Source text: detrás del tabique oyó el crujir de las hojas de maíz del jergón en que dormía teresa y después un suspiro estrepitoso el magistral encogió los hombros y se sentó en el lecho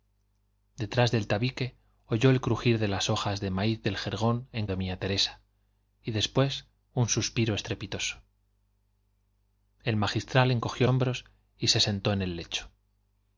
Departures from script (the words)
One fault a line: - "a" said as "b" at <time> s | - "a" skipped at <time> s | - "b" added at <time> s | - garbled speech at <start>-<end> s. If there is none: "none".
- "que" skipped at 4.7 s
- "los" skipped at 10.9 s